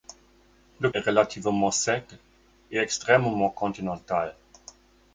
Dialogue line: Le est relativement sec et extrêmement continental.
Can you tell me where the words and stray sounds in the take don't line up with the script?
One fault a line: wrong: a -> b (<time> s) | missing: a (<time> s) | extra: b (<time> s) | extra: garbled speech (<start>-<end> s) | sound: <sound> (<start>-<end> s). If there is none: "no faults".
no faults